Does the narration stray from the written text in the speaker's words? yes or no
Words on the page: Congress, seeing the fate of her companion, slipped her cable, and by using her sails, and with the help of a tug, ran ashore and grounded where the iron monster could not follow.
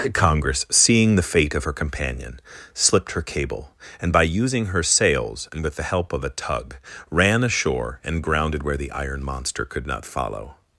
no